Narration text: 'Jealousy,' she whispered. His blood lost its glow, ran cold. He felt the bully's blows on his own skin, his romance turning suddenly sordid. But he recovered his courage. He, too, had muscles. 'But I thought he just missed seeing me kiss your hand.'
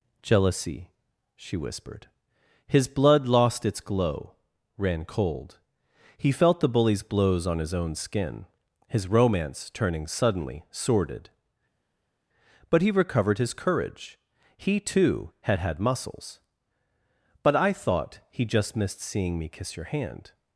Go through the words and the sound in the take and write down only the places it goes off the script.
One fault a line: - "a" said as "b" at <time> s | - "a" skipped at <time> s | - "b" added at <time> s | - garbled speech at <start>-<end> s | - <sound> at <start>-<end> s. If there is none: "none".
- "had" added at 15.6 s